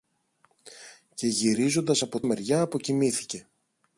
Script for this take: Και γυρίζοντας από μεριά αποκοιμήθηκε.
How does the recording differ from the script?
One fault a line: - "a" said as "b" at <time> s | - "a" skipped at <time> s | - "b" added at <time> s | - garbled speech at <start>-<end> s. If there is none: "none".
none